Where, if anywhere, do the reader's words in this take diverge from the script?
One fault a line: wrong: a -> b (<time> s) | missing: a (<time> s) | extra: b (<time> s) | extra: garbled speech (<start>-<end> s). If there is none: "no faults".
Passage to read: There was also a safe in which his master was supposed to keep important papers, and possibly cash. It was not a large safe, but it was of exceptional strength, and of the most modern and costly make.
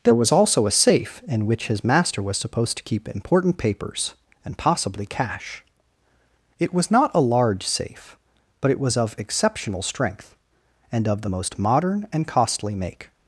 no faults